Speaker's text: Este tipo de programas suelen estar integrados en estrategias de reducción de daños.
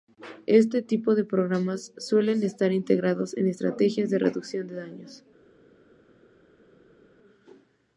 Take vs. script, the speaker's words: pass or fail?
pass